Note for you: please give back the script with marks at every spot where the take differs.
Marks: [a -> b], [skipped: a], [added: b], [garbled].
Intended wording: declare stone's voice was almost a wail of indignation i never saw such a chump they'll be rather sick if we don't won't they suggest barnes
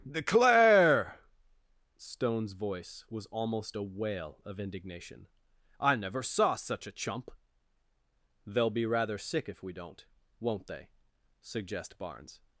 declare stone's voice was almost a wail of indignation i never saw such a chump they'll be rather sick if we don't won't they suggest barnes